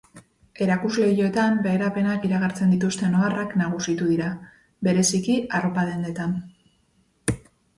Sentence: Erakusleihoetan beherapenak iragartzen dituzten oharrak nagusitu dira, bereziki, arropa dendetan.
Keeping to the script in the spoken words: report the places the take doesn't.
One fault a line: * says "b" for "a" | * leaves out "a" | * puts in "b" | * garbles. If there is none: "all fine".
all fine